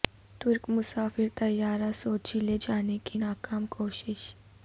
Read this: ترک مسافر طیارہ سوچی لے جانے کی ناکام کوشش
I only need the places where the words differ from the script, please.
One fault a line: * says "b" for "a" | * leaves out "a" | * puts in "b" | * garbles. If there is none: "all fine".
all fine